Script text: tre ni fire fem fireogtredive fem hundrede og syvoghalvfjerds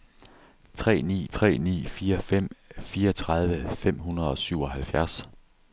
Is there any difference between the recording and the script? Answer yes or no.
yes